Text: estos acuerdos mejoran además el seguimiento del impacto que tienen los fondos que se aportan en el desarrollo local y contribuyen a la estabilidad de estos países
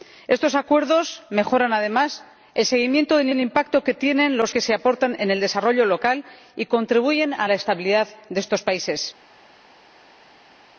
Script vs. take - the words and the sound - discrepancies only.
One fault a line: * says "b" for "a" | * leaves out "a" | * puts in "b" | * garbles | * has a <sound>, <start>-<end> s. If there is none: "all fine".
* puts in "del"
* leaves out "fondos"